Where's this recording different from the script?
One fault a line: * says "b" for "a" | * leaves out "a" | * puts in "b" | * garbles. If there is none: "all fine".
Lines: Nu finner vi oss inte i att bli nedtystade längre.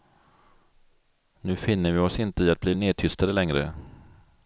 all fine